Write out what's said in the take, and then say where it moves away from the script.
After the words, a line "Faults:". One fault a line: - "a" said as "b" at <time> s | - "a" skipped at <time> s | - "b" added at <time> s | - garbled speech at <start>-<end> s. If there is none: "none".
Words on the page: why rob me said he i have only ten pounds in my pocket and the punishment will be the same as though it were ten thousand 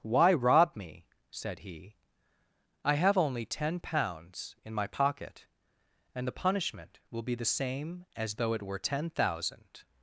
why rob me said he i have only ten pounds in my pocket and the punishment will be the same as though it were ten thousand
Faults:
none